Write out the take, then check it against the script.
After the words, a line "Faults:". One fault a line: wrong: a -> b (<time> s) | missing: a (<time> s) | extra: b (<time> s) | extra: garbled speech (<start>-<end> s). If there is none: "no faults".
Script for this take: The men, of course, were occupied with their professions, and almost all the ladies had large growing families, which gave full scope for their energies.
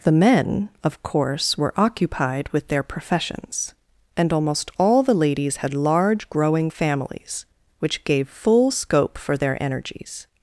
The men, of course, were occupied with their professions, and almost all the ladies had large growing families, which gave full scope for their energies.
Faults:
no faults